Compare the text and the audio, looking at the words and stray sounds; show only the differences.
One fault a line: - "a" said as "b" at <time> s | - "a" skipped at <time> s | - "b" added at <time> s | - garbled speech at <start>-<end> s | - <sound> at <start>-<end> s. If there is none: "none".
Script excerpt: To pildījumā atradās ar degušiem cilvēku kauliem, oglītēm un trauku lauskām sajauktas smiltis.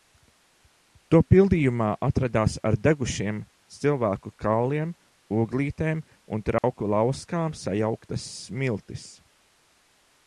- dropout at 6.6-6.6 s